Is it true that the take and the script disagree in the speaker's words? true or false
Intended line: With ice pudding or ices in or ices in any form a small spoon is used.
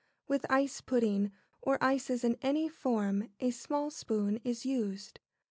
true